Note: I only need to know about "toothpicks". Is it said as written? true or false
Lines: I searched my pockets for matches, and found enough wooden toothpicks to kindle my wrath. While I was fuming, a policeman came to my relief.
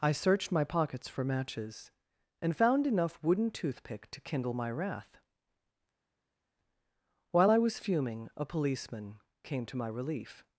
false